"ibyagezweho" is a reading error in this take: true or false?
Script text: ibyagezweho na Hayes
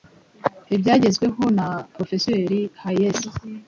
false